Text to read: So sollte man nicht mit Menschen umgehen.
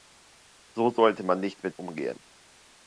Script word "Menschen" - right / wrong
wrong